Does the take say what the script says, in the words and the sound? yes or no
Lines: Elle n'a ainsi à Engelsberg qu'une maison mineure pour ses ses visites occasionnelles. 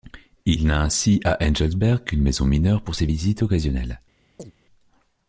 no